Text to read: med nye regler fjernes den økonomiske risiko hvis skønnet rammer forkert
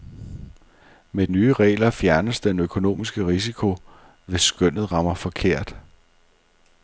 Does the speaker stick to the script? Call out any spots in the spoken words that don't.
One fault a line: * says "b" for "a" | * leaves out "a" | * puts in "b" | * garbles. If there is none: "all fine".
all fine